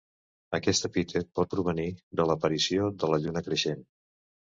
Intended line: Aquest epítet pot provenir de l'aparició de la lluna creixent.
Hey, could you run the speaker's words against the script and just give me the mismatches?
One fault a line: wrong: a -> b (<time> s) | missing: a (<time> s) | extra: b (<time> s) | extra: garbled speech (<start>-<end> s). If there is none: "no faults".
no faults